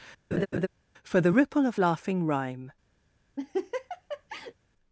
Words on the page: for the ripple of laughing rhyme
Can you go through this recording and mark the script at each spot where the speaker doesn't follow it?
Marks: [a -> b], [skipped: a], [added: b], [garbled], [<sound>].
[laugh] for the ripple of laughing rhyme [laugh]